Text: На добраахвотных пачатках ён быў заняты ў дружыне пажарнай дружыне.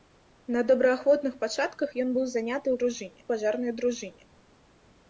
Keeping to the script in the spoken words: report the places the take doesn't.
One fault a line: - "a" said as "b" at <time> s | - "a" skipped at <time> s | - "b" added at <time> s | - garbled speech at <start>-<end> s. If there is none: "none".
none